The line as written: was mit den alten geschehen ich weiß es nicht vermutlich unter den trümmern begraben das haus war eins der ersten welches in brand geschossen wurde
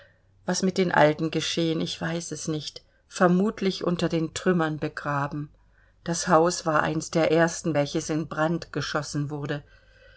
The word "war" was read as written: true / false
true